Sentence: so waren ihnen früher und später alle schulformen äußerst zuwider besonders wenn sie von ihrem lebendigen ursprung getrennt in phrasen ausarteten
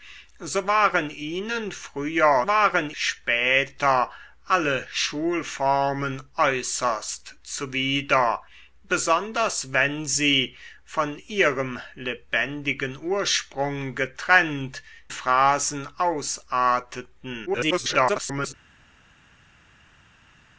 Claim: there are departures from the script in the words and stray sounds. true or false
true